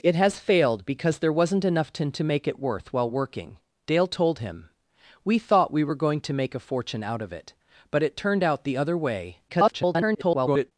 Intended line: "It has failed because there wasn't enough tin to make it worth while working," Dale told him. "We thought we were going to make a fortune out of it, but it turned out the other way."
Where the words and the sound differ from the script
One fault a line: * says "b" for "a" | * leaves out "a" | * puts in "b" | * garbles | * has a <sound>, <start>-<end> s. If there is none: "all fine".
* garbles